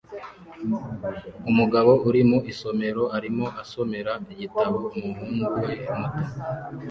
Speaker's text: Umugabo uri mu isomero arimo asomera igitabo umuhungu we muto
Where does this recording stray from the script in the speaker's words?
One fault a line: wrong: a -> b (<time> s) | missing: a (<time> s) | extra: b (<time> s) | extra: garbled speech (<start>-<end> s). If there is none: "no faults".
no faults